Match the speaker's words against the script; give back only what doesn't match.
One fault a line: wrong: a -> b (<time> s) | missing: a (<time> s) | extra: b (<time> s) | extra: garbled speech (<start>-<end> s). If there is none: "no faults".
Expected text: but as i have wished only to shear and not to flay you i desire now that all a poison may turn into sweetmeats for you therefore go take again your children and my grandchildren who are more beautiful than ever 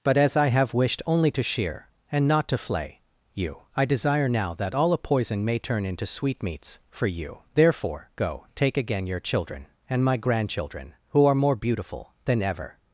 no faults